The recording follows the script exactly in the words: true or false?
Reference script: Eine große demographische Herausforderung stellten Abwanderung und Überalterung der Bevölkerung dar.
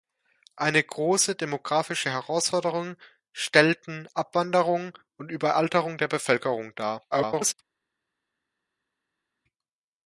false